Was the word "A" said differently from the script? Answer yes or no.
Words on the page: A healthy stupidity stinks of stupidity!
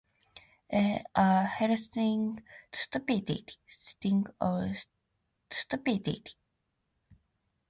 no